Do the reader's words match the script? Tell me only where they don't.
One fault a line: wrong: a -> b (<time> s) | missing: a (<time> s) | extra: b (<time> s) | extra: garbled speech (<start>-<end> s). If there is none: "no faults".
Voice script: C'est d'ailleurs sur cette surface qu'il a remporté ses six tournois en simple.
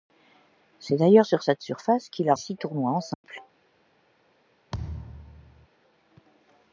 missing: remporté ses (2.3 s)